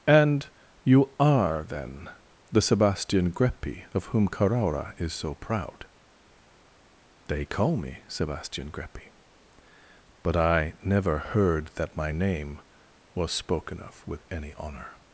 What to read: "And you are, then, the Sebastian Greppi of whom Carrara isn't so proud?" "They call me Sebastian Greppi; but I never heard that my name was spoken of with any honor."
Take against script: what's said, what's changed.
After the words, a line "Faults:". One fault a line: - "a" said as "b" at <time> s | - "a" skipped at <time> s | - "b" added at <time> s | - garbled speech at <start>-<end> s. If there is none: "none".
"And you are, then, the Sebastian Greppi of whom Carrara is so proud?" "They call me Sebastian Greppi; but I never heard that my name was spoken of with any honor."
Faults:
- "isn't" said as "is" at 5.0 s